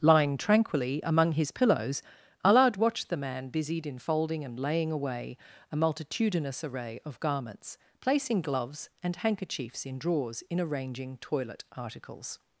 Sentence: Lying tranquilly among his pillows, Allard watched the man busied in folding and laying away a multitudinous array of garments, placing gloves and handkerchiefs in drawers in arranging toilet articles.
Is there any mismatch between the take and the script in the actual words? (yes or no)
no